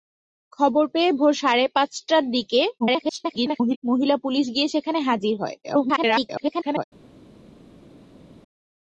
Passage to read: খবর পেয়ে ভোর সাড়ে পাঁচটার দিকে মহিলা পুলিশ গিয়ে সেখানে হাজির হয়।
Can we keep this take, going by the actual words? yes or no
no